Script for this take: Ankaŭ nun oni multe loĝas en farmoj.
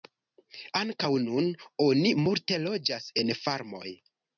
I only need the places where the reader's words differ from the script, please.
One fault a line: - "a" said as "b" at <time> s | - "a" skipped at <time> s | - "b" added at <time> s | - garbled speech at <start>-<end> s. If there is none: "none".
none